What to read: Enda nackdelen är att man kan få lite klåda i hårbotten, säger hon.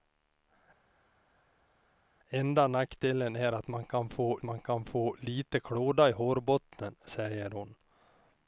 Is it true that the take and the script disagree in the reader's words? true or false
true